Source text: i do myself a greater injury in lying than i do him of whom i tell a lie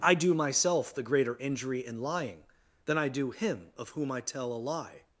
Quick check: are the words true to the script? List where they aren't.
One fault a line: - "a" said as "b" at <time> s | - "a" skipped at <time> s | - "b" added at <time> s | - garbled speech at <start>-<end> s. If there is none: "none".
- "a" said as "the" at 0.9 s